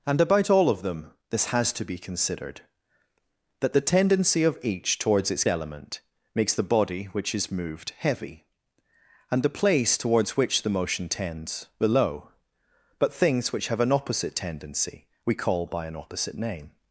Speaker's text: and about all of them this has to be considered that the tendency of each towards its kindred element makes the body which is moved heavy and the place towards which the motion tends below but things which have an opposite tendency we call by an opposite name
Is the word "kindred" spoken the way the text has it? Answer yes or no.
no